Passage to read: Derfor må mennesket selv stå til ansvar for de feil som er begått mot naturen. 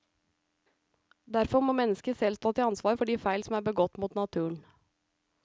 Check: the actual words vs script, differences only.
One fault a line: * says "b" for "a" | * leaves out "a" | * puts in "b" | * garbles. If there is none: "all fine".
all fine